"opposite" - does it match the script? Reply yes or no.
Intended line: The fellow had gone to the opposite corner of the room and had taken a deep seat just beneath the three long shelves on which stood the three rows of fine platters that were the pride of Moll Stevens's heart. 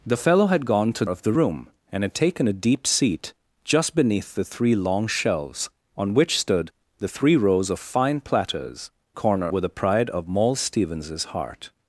no